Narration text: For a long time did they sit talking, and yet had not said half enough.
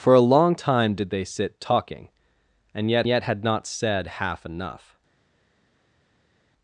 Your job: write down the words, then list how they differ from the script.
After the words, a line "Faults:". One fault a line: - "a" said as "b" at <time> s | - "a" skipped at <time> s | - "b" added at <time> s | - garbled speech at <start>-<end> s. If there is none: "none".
For a long time did they sit talking, and yet yet had not said half enough.
Faults:
- "yet" added at 3.1 s